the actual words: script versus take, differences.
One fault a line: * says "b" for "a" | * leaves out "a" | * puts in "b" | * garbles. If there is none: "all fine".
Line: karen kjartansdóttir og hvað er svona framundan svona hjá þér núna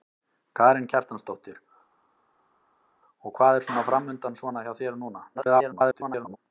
* garbles